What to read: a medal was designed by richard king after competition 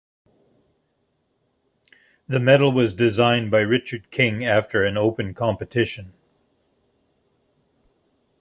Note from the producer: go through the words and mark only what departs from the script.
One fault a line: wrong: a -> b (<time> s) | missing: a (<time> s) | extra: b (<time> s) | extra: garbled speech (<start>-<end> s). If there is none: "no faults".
wrong: a -> the (2.3 s)
extra: an open (4.8 s)